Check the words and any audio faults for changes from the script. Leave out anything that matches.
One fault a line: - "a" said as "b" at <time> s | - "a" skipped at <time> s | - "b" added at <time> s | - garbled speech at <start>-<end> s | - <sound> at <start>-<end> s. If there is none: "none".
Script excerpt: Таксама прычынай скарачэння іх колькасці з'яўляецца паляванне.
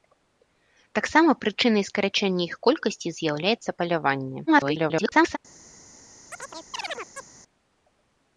- garbled speech at 4.5-5.4 s
- chirp at 6.3-7.3 s